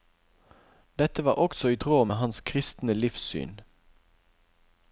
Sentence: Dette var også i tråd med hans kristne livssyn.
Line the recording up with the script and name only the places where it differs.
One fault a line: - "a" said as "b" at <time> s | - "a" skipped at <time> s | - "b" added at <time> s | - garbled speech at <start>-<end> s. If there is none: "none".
none